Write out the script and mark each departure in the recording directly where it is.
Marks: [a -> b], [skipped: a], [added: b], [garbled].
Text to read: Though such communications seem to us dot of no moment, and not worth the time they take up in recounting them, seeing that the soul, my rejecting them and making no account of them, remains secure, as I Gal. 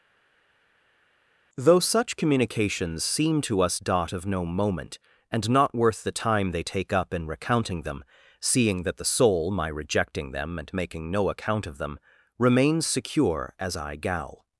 Though such communications seem to us dot of no moment, and not worth the time they take up in recounting them, seeing that the soul, my rejecting them and making no account of them, remains secure, as I Gal.